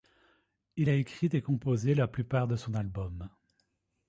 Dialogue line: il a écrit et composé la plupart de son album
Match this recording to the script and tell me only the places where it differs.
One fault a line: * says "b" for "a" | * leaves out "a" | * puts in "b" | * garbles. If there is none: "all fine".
all fine